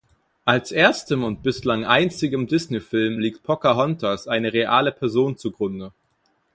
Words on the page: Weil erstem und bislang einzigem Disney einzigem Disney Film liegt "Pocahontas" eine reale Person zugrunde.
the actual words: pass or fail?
fail